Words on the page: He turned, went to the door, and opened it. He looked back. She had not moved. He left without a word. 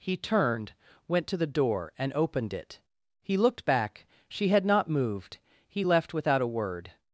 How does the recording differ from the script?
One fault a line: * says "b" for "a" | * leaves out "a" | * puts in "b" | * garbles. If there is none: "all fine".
all fine